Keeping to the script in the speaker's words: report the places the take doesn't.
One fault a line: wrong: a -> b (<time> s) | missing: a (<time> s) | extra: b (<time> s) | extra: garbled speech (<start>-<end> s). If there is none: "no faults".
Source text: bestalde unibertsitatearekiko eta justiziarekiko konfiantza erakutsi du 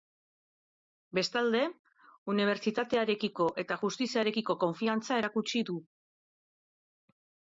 no faults